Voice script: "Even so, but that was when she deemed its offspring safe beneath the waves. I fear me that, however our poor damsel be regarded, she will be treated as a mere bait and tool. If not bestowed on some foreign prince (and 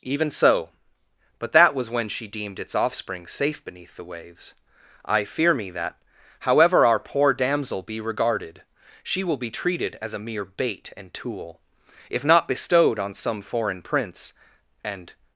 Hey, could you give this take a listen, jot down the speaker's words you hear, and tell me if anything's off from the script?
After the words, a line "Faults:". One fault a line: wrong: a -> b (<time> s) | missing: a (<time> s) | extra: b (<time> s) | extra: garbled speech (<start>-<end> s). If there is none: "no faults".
"Even so, but that was when she deemed its offspring safe beneath the waves. I fear me that, however our poor damsel be regarded, she will be treated as a mere bait and tool. If not bestowed on some foreign prince (and
Faults:
no faults